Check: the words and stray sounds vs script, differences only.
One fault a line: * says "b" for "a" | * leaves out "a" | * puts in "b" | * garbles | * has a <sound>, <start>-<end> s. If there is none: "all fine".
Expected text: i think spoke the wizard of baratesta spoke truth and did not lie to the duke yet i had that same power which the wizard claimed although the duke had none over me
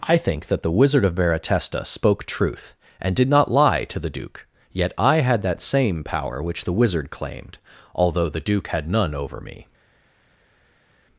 * says "that" for "spoke"